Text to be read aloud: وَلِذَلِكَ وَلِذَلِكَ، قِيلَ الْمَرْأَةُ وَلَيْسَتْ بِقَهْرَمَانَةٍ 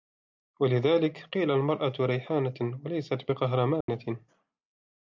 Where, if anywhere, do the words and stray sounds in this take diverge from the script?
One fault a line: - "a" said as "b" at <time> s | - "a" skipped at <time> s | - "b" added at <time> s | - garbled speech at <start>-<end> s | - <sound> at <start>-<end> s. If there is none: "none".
- "وَلِذَلِكَ" skipped at 1.2 s
- "رَيْحَانَةٌ" added at 2.0 s
- dropout at 3.8-3.9 s